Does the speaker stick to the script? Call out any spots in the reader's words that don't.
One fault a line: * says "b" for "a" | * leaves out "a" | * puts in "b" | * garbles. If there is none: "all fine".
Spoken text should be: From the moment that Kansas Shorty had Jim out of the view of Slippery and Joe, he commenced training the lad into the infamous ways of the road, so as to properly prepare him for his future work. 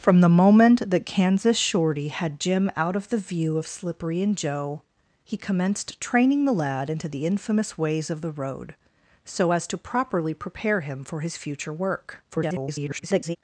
* garbles